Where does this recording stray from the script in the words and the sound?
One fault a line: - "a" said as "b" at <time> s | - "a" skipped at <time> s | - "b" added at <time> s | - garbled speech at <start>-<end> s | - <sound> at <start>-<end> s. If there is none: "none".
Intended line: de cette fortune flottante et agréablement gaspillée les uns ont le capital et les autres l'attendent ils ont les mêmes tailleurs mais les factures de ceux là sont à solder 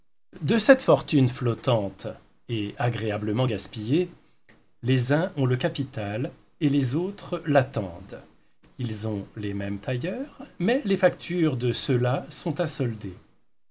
none